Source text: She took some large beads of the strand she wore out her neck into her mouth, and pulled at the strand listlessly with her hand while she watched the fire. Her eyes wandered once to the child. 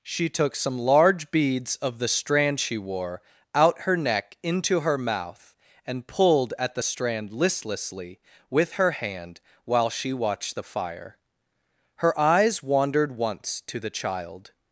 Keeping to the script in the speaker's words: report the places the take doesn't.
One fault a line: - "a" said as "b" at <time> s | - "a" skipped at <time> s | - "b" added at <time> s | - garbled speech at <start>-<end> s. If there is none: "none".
none